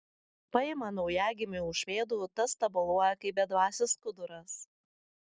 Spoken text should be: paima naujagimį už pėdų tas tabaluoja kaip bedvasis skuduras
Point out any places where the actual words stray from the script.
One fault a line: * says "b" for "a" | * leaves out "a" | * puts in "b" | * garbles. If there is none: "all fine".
all fine